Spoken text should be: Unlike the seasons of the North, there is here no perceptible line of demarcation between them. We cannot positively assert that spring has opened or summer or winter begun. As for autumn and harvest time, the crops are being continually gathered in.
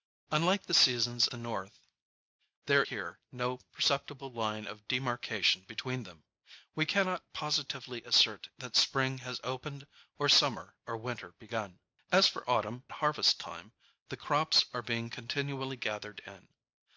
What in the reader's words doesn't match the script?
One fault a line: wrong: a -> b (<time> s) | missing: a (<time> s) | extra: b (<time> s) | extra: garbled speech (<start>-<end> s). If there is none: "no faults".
missing: of (1.3 s)
missing: is (2.8 s)
missing: and (12.8 s)